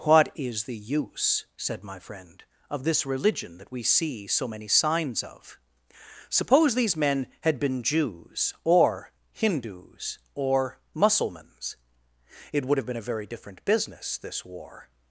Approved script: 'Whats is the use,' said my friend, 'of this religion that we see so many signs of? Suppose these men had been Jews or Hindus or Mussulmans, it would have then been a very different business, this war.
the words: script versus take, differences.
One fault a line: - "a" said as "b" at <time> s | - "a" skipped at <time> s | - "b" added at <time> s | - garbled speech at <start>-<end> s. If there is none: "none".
- "Whats" said as "What" at 0.0 s
- "then" skipped at 12.9 s